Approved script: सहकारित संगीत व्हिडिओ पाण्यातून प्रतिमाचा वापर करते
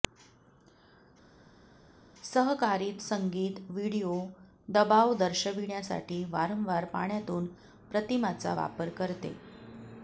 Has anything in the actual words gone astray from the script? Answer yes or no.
yes